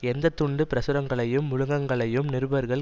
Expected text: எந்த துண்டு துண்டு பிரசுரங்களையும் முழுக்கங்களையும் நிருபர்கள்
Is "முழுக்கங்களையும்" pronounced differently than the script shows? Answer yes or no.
no